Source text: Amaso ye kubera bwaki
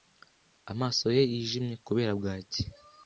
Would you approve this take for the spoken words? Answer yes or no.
no